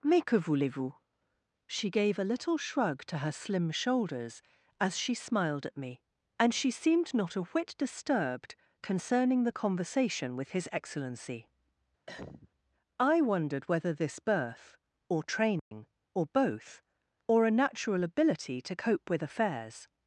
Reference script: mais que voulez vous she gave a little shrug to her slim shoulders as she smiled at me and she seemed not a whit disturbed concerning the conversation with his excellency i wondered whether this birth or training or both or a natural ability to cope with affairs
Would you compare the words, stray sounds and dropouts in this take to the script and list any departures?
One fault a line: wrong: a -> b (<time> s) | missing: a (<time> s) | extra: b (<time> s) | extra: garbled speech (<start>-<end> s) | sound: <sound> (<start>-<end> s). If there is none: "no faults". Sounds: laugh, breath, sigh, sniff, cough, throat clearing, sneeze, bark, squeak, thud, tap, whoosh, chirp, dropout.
sound: cough (12.1-12.5 s)
sound: dropout (15.6-15.7 s)